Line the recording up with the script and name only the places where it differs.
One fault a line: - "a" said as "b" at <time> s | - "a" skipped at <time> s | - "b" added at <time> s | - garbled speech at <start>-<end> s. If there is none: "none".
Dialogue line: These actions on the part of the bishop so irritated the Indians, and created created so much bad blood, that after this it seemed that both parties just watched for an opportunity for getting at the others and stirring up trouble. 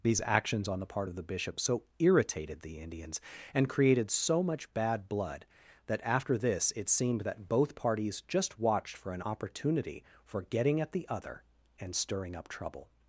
- "created" skipped at 4.1 s
- "others" said as "other" at 11.1 s